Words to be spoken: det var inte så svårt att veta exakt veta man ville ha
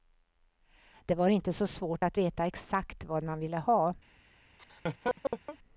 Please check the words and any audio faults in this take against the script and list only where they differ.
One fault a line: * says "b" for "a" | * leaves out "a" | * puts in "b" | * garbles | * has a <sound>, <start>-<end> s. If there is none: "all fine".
* says "vad" for "veta"
* has a laugh, 4.6-5.6 s